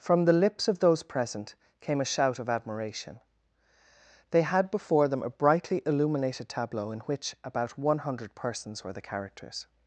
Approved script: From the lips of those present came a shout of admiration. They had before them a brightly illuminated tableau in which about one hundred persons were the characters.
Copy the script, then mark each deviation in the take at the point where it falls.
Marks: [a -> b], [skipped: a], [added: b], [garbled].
From the lips of those present came a shout of admiration. They had before them a brightly illuminated tableau in which about one hundred persons were the characters.